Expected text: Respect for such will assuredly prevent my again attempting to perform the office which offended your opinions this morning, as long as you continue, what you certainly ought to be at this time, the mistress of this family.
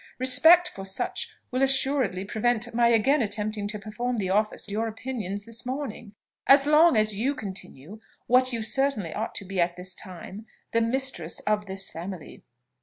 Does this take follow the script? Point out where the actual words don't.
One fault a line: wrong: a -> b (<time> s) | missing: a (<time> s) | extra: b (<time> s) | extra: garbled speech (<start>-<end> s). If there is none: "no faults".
missing: which offended (4.7 s)